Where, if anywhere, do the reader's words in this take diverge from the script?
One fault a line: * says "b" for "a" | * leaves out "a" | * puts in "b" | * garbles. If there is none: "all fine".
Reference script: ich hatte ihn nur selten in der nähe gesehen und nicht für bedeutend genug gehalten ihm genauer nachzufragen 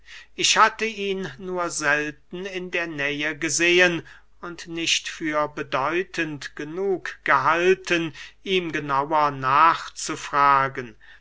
all fine